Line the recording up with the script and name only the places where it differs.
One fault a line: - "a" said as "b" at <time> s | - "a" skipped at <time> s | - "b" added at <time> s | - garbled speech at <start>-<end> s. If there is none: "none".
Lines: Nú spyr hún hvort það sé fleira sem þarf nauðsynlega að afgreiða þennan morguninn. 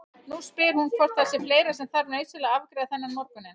none